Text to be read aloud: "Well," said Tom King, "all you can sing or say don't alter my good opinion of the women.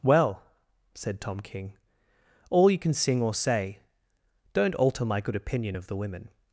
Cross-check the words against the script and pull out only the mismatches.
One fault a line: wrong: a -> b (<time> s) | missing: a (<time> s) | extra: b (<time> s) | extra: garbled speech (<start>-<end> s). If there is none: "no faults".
no faults